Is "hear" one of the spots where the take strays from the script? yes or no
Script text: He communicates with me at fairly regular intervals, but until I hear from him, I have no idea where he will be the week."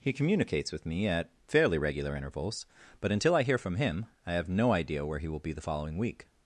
no